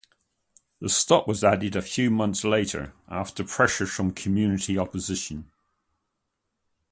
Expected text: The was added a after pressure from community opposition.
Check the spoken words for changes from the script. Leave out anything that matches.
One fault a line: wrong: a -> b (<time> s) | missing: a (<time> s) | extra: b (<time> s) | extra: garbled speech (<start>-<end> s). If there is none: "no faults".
extra: stop (0.9 s)
extra: few months later (1.8 s)